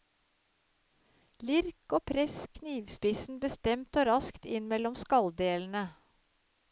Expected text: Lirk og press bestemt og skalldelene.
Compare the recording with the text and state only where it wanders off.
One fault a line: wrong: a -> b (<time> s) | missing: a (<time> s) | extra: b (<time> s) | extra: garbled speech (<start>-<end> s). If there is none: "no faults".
extra: knivspissen (2.6 s)
extra: raskt inn mellom (4.1 s)